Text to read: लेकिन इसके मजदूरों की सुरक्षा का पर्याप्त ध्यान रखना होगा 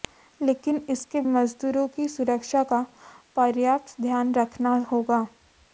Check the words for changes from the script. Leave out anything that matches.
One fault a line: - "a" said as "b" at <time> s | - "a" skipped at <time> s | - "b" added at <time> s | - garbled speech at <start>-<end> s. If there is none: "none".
none